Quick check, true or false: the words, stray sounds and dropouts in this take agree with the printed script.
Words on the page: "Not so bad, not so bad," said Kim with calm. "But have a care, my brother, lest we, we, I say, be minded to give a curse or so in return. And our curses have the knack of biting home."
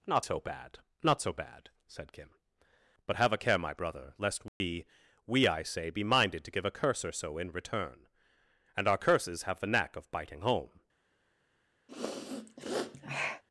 false